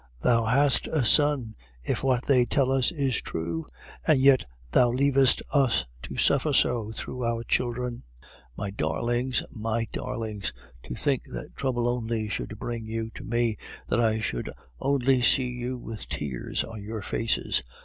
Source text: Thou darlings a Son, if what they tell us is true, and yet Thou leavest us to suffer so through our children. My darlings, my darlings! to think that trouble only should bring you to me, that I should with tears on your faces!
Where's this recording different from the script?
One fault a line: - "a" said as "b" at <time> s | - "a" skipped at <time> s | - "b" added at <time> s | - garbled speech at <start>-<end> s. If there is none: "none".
- "darlings" said as "hast" at 0.5 s
- "only see you" added at 14.8 s